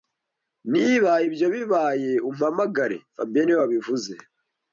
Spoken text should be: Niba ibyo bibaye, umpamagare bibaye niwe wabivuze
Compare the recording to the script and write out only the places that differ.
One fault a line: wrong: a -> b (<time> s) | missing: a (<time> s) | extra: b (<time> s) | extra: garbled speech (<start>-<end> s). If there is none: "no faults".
wrong: bibaye -> fabien (3.1 s)